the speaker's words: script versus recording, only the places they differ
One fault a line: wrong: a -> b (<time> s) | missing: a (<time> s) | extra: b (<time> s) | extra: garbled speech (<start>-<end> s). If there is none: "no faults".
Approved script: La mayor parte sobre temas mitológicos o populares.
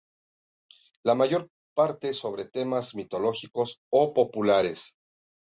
no faults